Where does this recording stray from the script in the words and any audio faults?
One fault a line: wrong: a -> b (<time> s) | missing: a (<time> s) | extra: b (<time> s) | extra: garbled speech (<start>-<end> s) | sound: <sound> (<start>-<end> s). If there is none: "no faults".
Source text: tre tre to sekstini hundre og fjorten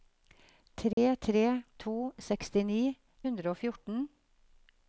sound: dropout (0.9-1.0 s)